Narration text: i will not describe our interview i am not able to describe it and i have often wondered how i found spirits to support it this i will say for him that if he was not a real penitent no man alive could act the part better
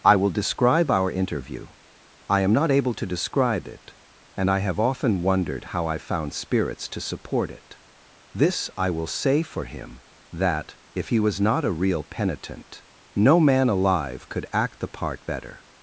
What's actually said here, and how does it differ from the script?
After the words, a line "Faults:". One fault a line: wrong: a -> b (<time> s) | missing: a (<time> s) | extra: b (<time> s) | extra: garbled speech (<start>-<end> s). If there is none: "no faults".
i will describe our interview i am not able to describe it and i have often wondered how i found spirits to support it this i will say for him that if he was not a real penitent no man alive could act the part better
Faults:
missing: not (0.3 s)